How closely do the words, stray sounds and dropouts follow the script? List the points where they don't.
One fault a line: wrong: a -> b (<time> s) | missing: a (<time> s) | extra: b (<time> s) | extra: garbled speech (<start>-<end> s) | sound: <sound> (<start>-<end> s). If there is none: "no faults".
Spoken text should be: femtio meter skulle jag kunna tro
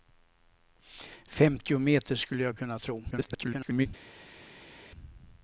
extra: garbled speech (3.1-3.9 s)